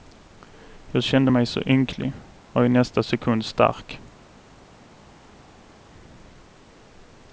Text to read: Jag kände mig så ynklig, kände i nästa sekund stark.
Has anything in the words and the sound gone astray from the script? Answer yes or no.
yes